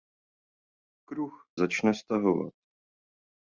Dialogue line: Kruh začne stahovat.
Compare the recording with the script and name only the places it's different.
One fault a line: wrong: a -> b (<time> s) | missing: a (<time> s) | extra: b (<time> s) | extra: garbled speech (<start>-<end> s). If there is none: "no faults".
no faults